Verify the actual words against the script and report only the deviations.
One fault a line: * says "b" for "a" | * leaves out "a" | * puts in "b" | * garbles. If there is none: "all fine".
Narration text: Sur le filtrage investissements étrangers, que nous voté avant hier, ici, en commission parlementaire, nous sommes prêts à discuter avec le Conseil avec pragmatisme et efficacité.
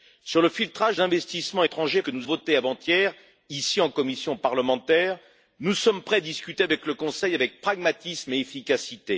all fine